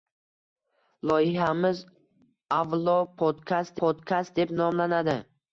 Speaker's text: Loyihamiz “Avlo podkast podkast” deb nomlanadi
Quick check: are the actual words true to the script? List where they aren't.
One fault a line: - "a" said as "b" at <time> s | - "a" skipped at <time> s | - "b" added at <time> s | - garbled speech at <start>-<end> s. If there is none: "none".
none